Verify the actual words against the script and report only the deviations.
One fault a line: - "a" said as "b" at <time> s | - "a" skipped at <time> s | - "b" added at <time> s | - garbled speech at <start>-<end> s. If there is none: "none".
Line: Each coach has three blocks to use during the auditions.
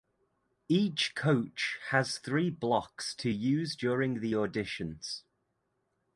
none